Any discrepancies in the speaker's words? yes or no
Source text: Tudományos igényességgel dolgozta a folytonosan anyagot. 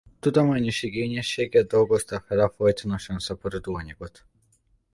yes